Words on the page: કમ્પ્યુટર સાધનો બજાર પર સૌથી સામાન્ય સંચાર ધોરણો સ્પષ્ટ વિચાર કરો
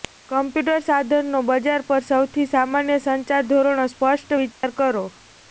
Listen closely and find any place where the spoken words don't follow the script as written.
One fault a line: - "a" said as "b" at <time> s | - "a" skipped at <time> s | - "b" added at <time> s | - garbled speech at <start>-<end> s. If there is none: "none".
none